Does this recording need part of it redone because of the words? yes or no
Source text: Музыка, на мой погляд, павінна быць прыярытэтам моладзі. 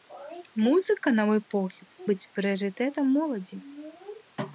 yes